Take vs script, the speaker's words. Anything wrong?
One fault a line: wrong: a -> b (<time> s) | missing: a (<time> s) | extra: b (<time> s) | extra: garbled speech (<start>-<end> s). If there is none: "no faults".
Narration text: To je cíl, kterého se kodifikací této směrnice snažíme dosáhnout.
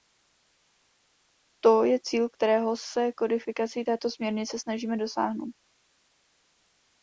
no faults